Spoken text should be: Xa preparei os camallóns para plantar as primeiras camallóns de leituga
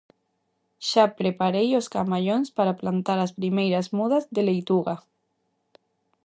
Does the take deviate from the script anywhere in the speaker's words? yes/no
yes